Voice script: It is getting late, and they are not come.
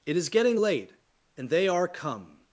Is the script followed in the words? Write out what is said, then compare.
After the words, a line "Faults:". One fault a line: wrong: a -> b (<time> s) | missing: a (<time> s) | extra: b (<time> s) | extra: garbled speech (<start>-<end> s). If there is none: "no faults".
It is getting late, and they are come.
Faults:
missing: not (1.9 s)